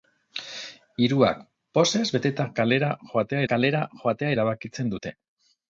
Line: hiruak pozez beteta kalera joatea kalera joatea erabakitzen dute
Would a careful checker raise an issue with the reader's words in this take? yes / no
no